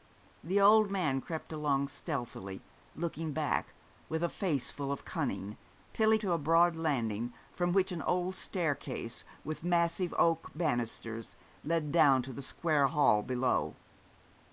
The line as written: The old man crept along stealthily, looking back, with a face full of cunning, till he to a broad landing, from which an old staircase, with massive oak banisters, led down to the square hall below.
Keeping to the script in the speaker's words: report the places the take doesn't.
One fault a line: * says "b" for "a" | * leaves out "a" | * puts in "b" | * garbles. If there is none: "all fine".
all fine